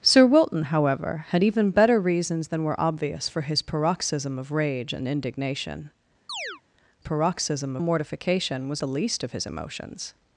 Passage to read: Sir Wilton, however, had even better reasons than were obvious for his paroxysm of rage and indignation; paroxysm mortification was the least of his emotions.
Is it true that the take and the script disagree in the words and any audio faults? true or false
true